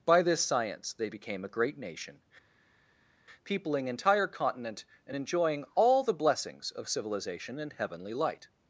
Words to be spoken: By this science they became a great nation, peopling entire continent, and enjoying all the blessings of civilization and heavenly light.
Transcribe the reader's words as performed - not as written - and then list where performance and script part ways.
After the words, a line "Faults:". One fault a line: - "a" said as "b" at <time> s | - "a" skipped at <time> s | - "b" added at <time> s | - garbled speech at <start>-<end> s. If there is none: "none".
By this science they became a great nation, peopling entire continent, and enjoying all the blessings of civilization and heavenly light.
Faults:
none